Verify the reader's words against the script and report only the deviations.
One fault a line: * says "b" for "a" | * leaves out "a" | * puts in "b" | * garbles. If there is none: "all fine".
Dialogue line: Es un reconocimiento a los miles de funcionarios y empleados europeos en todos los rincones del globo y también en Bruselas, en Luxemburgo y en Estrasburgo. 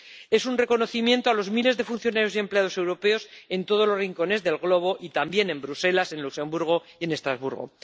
all fine